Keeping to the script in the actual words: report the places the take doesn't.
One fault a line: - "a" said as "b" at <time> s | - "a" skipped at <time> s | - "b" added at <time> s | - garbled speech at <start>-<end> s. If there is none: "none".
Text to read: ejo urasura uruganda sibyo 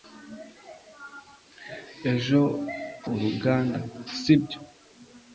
- "urasura" skipped at 2.4 s